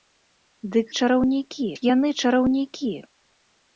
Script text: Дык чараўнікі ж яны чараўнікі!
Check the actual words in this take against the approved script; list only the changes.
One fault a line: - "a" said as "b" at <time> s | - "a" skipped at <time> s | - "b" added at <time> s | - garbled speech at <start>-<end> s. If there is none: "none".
none